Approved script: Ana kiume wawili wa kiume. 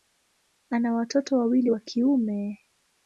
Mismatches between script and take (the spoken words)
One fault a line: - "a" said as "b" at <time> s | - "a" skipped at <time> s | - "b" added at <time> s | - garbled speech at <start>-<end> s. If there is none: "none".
- "kiume" said as "watoto" at 0.9 s